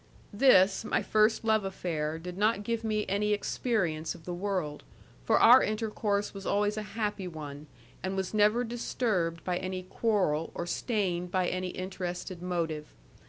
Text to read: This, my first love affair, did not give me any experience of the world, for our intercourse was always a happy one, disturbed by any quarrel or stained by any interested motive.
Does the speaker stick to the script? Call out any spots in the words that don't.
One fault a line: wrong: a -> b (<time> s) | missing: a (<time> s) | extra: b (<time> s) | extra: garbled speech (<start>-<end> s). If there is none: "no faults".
extra: and was never (8.0 s)